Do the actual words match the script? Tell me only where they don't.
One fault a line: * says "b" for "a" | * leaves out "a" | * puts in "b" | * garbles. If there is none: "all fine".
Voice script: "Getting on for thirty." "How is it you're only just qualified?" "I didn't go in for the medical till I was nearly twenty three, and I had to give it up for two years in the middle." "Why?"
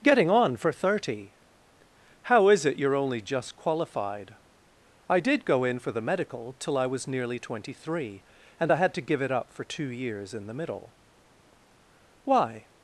* says "did" for "didn't"